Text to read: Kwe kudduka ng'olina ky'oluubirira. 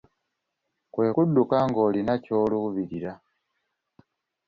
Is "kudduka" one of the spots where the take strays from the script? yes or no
no